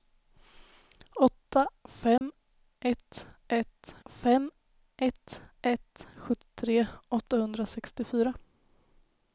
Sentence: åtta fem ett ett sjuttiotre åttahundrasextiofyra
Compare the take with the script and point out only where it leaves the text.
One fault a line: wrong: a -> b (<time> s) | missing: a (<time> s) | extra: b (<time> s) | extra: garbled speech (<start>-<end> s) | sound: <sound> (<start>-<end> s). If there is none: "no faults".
sound: dropout (2.2-2.2 s)
extra: fem ett ett (4.0 s)